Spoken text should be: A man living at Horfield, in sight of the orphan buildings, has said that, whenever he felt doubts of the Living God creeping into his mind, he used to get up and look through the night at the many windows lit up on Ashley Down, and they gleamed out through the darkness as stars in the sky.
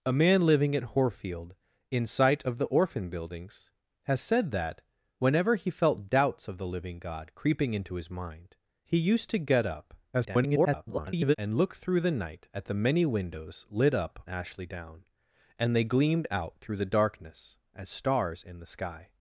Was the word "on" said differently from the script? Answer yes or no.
yes